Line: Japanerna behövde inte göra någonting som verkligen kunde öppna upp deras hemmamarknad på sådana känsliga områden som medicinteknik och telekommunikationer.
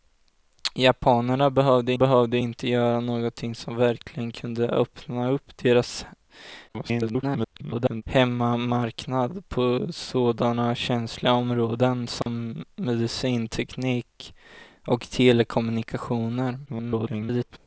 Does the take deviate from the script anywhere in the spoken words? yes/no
yes